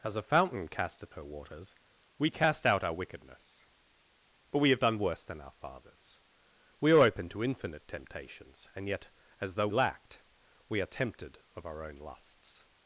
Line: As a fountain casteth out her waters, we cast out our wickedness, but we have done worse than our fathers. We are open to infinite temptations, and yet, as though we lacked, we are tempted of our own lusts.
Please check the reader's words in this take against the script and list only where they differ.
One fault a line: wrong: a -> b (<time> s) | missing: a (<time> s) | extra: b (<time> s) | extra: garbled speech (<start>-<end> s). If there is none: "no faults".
missing: out (1.1 s)
missing: we (9.7 s)